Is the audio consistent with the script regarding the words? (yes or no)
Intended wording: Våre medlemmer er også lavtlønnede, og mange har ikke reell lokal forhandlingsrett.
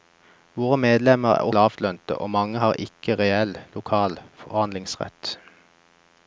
no